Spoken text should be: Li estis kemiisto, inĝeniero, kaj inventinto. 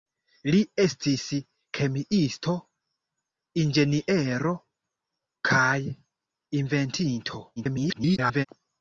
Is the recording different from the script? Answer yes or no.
yes